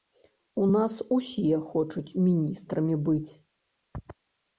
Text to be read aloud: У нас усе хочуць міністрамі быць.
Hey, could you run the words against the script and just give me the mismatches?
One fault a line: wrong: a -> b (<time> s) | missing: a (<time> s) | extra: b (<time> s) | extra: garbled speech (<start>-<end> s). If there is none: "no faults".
no faults